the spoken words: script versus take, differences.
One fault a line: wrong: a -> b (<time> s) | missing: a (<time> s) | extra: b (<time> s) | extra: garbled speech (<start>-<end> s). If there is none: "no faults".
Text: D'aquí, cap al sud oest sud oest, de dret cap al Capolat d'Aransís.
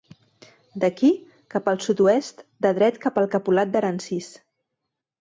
missing: sud oest (2.4 s)